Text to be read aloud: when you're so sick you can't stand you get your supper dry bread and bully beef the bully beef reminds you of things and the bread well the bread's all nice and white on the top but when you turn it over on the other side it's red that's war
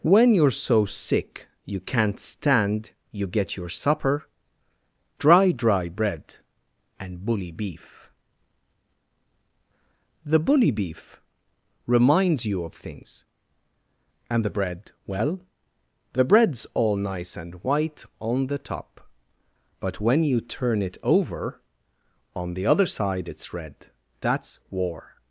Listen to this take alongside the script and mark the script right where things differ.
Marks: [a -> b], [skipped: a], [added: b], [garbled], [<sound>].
when you're so sick you can't stand you get your supper dry [added: dry] bread and bully beef the bully beef reminds you of things and the bread well the bread's all nice and white on the top but when you turn it over on the other side it's red that's war